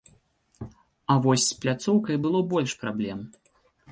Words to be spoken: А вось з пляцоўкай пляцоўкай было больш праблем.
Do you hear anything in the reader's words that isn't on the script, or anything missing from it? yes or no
yes